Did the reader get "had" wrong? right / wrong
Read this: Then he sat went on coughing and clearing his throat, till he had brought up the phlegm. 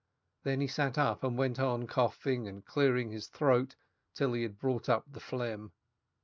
right